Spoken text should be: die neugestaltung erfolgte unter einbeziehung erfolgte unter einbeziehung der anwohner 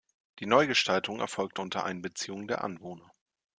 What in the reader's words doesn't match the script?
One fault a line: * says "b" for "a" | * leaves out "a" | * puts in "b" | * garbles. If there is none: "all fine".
* leaves out "erfolgte unter einbeziehung"